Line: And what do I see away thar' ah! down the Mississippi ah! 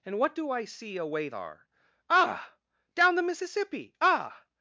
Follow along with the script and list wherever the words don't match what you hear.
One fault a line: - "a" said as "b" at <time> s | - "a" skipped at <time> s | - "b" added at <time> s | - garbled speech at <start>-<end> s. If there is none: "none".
none